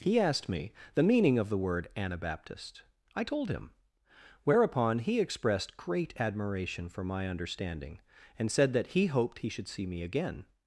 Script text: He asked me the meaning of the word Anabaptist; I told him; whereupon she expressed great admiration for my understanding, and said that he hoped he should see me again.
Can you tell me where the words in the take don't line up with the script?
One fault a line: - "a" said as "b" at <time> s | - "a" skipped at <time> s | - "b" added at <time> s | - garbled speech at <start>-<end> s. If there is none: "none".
- "she" said as "he" at 5.0 s